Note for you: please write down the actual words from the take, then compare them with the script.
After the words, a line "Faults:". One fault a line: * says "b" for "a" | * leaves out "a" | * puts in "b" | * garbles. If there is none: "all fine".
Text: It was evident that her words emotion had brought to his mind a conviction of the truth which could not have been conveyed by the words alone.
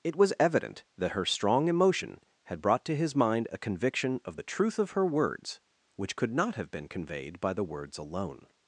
It was evident that her strong emotion had brought to his mind a conviction of the truth of her words which could not have been conveyed by the words alone.
Faults:
* says "strong" for "words"
* puts in "of her words"